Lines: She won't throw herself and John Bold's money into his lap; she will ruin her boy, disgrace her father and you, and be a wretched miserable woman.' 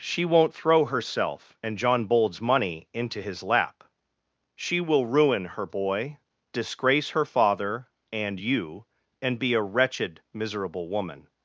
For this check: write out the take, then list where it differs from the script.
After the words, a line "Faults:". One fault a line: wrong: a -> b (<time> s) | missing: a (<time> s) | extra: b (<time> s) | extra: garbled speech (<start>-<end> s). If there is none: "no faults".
She won't throw herself and John Bold's money into his lap; she will ruin her boy, disgrace her father and you, and be a wretched miserable woman.'
Faults:
no faults